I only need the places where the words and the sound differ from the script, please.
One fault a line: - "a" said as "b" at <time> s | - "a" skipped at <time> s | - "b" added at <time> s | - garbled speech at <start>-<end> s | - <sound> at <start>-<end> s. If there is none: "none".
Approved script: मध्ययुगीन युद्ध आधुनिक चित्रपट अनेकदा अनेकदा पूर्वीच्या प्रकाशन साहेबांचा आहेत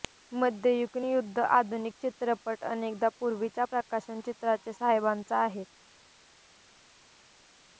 - "अनेकदा" skipped at 3.1 s
- "चित्राचे" added at 4.2 s